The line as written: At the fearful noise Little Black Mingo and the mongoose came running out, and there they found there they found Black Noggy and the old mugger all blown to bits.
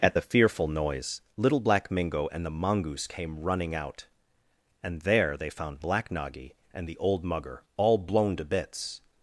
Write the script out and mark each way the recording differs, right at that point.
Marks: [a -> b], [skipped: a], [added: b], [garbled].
At the fearful noise Little Black Mingo and the mongoose came running out, and there they found [skipped: there they found] Black Noggy and the old mugger all blown to bits.